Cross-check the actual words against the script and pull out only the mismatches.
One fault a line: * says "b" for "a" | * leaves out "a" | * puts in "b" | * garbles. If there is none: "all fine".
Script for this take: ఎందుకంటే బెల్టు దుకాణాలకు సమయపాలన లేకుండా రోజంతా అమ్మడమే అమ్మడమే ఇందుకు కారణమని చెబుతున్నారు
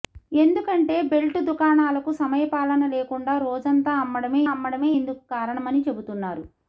all fine